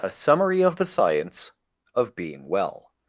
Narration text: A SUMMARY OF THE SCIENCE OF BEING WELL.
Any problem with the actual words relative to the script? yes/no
no